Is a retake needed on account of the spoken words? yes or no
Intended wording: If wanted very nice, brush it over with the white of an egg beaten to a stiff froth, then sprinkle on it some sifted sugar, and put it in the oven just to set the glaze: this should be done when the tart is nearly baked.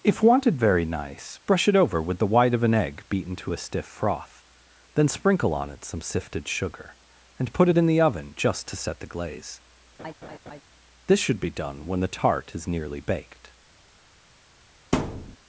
no